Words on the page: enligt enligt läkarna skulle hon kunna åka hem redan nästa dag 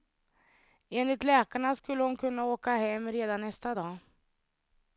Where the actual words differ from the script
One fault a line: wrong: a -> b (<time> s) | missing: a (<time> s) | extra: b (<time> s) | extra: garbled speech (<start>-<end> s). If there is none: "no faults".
missing: enligt (1.2 s)